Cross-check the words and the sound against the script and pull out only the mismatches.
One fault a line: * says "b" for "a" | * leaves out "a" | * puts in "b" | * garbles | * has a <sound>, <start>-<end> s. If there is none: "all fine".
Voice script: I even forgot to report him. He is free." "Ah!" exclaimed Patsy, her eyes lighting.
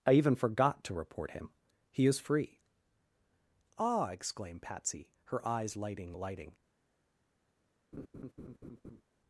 * puts in "lighting"
* has a laugh, 7.9-9.0 s